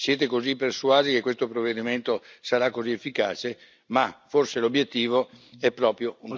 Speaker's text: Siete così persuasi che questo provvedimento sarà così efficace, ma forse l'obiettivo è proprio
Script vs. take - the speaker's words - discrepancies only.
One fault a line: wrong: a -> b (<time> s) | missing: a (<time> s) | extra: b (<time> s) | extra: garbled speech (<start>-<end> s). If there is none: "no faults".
no faults